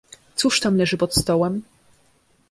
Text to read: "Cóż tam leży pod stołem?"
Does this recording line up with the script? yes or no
yes